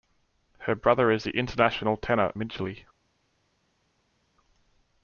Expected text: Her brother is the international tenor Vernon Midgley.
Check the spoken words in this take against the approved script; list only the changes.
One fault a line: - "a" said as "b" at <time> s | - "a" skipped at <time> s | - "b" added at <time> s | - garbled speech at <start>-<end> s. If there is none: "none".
- "Vernon" skipped at 2.3 s